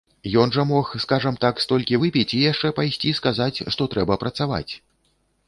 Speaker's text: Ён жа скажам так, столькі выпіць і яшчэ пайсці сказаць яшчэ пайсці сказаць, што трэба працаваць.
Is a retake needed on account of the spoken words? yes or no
yes